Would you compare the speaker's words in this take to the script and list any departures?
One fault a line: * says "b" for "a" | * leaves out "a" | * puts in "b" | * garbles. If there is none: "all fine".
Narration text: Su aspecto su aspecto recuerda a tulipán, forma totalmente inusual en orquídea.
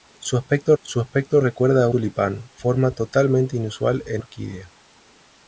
all fine